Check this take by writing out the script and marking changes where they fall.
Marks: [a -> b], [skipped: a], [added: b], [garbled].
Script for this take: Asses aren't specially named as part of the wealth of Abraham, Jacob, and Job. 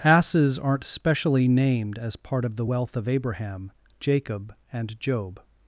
Asses aren't specially named as part of the wealth of Abraham, Jacob, and Job.